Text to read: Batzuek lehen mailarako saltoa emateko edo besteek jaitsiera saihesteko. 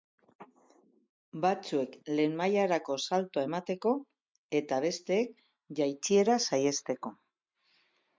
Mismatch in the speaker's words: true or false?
true